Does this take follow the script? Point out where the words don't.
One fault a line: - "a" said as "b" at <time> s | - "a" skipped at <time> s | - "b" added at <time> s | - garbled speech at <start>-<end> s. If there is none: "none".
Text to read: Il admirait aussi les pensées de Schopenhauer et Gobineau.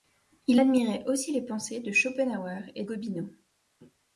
none